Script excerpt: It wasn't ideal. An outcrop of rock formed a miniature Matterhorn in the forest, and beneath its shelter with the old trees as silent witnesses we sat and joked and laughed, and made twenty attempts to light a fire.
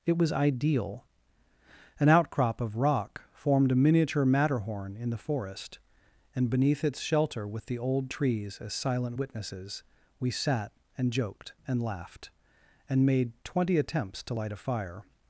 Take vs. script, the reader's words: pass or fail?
fail